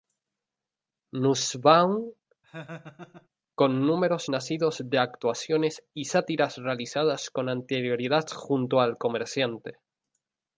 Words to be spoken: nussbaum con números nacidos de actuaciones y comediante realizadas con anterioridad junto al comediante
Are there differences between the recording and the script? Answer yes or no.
yes